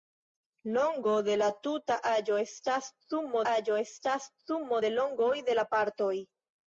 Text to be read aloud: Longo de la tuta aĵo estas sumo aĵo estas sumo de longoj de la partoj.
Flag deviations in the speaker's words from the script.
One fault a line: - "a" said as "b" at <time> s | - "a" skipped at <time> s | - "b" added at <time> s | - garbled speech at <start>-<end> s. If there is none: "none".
none